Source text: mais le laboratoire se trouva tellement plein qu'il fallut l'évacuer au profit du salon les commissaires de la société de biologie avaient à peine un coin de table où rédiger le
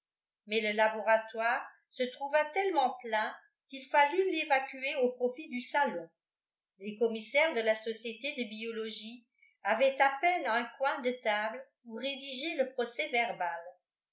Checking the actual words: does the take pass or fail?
pass